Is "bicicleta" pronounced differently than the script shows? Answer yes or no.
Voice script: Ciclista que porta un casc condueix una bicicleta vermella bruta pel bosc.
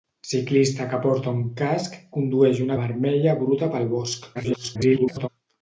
yes